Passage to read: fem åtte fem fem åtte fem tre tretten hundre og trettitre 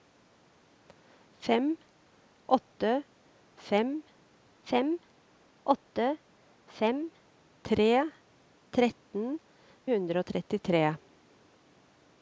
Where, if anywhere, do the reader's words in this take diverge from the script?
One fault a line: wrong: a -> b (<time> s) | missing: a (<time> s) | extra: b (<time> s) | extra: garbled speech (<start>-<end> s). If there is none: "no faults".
no faults